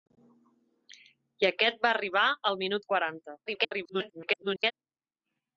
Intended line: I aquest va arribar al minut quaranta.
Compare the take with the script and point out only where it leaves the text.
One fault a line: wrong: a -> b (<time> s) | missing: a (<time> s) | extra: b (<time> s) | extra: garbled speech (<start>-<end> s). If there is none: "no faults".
extra: garbled speech (3.5-4.7 s)